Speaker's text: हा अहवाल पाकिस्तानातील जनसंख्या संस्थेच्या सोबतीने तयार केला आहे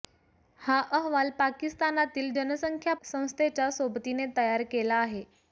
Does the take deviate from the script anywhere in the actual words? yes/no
no